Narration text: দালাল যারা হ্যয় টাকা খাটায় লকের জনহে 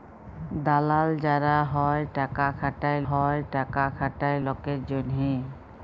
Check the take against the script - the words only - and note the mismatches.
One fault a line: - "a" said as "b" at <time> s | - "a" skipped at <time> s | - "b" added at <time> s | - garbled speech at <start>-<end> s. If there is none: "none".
- "হ্যয় টাকা খাটায়" added at 3.1 s